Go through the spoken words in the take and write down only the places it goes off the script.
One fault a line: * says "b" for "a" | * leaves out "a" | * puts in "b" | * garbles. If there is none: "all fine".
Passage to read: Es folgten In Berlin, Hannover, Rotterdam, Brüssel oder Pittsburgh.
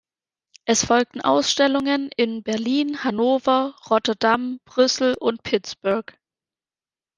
* puts in "Ausstellungen"
* says "und" for "oder"